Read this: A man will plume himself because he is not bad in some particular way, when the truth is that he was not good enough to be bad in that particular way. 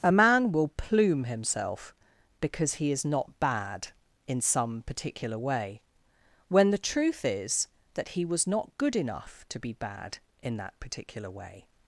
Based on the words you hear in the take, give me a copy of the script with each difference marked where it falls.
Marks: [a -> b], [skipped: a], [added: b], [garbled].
A man will plume himself because he is not bad in some particular way, when the truth is that he was not good enough to be bad in that particular way.